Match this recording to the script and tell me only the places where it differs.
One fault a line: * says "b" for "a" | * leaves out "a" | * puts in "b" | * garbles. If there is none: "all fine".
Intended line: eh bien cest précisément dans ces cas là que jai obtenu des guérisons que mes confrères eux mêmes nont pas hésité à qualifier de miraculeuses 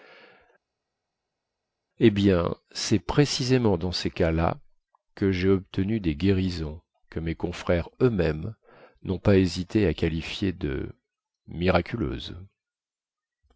all fine